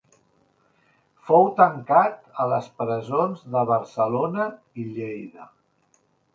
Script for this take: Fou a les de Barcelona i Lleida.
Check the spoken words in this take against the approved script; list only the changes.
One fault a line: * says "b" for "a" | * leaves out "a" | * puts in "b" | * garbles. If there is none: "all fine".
* puts in "tancat"
* puts in "presons"